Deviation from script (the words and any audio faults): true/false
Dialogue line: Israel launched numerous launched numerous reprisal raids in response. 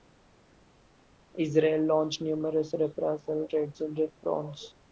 true